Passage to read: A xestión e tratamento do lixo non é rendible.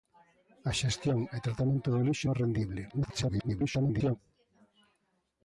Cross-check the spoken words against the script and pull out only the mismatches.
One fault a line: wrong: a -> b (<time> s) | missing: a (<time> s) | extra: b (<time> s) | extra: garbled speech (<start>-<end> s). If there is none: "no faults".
missing: non (2.3 s)
extra: garbled speech (2.9-4.2 s)